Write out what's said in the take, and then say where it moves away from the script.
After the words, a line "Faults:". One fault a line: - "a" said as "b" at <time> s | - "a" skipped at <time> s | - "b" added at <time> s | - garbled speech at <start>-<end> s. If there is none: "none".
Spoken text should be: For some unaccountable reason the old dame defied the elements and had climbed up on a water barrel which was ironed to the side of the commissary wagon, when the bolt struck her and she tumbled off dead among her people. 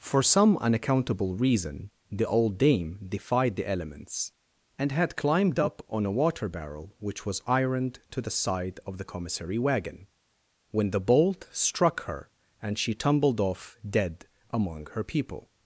For some unaccountable reason the old dame defied the elements and had climbed up on a water barrel which was ironed to the side of the commissary wagon, when the bolt struck her and she tumbled off dead among her people.
Faults:
none